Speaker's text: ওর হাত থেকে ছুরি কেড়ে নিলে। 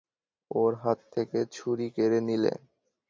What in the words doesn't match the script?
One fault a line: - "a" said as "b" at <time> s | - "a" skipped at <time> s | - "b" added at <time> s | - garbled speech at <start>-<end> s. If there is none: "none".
none